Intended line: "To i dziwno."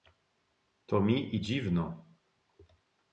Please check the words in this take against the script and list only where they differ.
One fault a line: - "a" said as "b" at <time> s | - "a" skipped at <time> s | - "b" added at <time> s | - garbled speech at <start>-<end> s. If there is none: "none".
- "mi" added at 1.0 s